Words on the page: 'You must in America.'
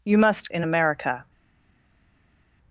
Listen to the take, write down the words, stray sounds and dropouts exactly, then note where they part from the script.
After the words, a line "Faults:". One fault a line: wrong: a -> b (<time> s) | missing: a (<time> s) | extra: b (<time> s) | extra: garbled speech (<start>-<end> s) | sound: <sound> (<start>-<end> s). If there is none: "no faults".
'You must in America.'
Faults:
no faults